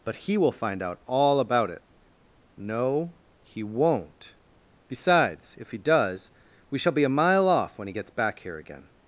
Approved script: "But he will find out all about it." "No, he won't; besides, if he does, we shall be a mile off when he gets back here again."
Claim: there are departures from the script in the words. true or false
false